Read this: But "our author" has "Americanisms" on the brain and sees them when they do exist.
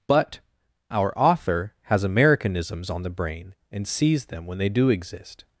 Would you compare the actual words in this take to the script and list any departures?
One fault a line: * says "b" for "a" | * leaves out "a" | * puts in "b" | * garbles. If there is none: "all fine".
all fine